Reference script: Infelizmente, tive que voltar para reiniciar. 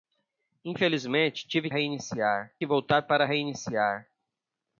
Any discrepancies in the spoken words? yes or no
yes